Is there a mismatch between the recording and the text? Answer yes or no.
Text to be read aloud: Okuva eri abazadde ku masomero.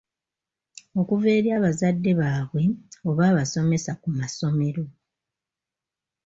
yes